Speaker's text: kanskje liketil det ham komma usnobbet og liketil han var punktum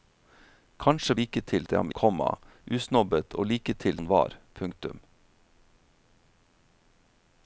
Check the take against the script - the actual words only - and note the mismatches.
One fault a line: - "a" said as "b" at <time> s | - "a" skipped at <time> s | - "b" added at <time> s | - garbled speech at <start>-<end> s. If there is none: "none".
none